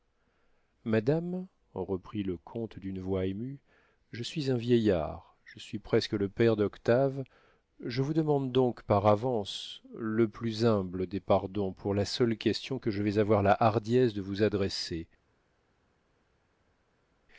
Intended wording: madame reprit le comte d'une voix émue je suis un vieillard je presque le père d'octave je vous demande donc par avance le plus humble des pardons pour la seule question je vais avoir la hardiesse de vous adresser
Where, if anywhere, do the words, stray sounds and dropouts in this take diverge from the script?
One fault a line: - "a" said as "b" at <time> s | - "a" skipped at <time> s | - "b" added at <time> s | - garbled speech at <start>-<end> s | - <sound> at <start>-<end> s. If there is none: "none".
- "suis" added at 5.6 s
- "que" added at 12.8 s